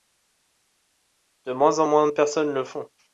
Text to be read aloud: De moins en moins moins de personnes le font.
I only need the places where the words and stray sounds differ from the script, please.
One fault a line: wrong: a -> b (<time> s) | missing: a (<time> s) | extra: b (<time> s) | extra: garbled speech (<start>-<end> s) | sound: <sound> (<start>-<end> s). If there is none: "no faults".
missing: moins (2.1 s)